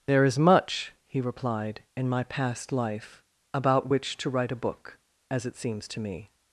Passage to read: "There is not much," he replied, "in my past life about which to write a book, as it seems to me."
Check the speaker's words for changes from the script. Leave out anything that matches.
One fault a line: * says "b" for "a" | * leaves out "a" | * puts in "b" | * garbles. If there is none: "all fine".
* leaves out "not"